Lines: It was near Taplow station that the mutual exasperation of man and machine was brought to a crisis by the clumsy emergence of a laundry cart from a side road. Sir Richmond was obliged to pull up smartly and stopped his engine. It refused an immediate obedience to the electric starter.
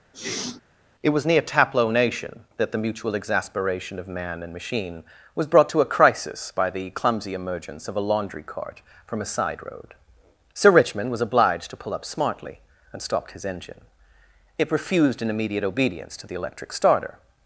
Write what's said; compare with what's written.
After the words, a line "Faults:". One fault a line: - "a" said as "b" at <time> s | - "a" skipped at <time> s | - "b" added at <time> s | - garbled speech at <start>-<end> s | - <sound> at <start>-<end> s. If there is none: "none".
It was near Taplow nation that the mutual exasperation of man and machine was brought to a crisis by the clumsy emergence of a laundry cart from a side road. Sir Richmond was obliged to pull up smartly and stopped his engine. It refused an immediate obedience to the electric starter.
Faults:
- sneeze at 0.1-0.6 s
- "station" said as "nation" at 1.9 s